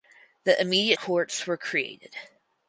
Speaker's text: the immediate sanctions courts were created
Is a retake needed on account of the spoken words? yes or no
yes